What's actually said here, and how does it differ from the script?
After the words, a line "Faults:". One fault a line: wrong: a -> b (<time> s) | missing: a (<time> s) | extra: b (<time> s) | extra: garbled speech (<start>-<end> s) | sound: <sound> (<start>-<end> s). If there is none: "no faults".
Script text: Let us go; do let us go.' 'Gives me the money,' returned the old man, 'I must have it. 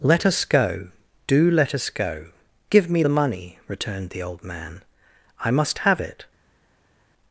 Let us go; do let us go.' 'Give me the money,' returned the old man, 'I must have it.
Faults:
wrong: Gives -> Give (2.7 s)